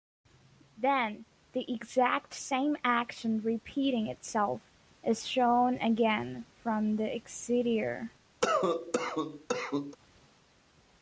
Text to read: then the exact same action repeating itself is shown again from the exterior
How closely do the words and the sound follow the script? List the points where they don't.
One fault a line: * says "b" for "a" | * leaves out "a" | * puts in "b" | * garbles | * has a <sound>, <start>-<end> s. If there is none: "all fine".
* has a cough, 8.4-10.0 s